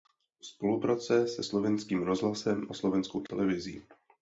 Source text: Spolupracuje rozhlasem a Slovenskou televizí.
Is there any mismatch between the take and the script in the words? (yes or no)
yes